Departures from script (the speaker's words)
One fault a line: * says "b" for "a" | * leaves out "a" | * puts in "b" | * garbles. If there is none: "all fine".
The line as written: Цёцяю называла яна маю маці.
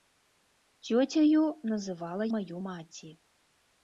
* leaves out "яна"